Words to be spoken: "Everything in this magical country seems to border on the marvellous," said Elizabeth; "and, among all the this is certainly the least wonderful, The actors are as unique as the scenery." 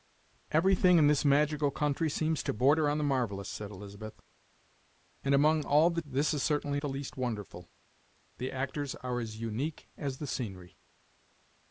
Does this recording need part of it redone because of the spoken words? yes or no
no